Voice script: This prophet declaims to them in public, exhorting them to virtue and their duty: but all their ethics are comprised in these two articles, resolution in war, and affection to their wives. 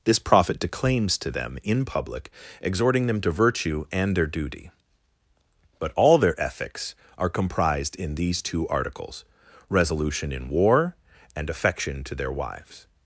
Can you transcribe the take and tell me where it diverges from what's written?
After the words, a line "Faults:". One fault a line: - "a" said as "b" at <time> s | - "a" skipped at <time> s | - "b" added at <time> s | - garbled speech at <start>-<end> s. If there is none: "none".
This prophet declaims to them in public, exhorting them to virtue and their duty: but all their ethics are comprised in these two articles, resolution in war, and affection to their wives.
Faults:
none